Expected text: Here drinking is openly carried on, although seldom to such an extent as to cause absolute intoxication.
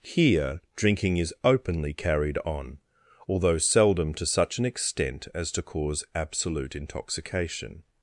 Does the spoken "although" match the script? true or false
true